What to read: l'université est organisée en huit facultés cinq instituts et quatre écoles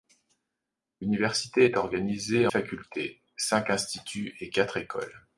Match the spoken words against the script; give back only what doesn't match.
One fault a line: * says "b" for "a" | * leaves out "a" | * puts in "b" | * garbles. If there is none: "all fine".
* leaves out "en huit"